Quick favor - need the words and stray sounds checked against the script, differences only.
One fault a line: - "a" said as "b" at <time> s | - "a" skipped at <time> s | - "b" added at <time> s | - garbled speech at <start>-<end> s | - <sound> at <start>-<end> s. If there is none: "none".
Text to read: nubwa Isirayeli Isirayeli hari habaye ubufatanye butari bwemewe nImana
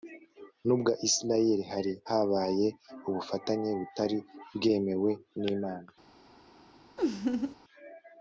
- "Isirayeli" skipped at 1.6 s
- laugh at 7.0-7.6 s